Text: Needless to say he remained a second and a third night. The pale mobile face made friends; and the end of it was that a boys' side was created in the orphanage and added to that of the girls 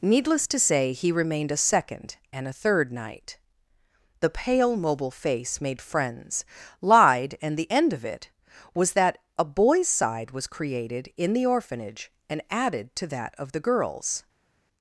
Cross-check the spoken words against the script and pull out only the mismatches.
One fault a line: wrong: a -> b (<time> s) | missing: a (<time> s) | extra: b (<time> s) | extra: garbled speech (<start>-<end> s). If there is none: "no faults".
extra: lied (6.8 s)